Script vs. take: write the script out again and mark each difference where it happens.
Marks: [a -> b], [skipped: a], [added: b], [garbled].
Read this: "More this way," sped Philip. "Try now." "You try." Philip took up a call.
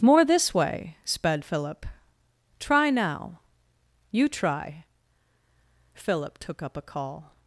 "More this way," sped Philip. "Try now." "You try." Philip took up a call.